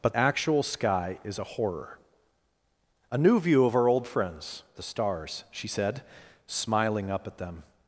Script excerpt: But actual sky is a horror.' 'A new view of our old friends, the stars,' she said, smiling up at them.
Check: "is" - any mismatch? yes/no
no